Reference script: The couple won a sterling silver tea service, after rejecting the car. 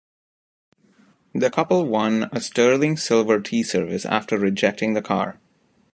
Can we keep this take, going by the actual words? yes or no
yes